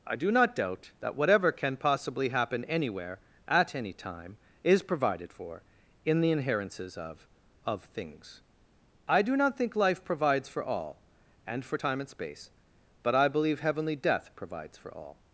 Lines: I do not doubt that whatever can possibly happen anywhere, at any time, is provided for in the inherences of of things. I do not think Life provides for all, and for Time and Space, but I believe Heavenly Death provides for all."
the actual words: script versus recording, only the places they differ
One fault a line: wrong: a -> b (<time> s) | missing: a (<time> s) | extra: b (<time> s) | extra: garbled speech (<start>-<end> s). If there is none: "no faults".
no faults